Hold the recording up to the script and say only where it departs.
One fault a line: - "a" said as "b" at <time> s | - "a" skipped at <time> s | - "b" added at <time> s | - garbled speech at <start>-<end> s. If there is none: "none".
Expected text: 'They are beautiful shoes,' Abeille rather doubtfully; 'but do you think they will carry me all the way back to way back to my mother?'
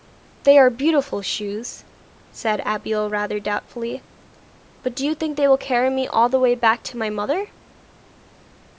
- "said" added at 2.3 s
- "way back to" skipped at 7.0 s